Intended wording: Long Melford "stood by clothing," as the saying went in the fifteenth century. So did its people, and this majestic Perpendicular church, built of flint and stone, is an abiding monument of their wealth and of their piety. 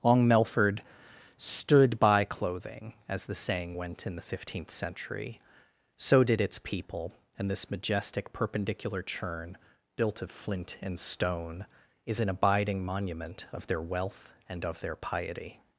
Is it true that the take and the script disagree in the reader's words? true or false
true